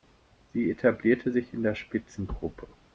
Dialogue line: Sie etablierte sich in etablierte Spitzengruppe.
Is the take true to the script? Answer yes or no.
no